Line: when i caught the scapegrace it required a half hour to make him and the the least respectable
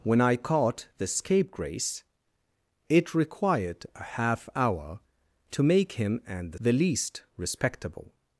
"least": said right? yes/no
yes